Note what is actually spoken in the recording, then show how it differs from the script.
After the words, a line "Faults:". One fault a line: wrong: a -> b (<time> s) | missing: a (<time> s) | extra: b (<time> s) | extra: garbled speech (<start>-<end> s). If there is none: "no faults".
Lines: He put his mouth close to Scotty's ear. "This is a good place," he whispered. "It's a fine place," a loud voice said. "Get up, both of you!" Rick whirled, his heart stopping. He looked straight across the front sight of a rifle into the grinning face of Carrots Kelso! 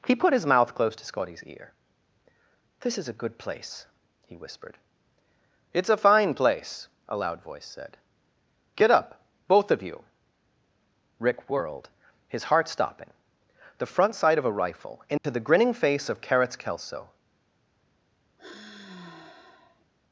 He put his mouth close to Scotty's ear. "This is a good place," he whispered. "It's a fine place," a loud voice said. "Get up, both of you!" Rick whirled, his heart stopping. the front sight of a rifle into the grinning face of Carrots Kelso!
Faults:
missing: He looked straight across (13.1 s)